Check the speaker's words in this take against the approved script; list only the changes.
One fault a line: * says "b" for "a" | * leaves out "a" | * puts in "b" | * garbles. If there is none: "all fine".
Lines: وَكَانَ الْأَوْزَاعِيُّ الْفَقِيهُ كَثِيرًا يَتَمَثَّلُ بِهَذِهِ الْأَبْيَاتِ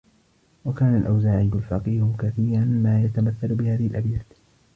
* puts in "مَا"